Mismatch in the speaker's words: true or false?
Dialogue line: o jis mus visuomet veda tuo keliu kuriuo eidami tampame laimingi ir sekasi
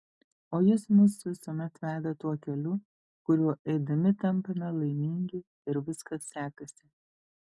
true